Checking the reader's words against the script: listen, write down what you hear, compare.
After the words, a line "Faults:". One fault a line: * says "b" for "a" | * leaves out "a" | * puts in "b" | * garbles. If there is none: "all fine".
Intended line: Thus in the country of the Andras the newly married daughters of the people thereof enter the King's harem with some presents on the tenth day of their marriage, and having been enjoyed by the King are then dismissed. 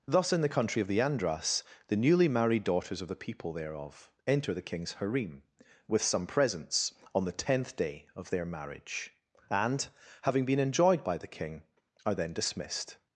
Thus in the country of the Andras the newly married daughters of the people thereof enter the King's harem with some presents on the tenth day of their marriage, and having been enjoyed by the King are then dismissed.
Faults:
all fine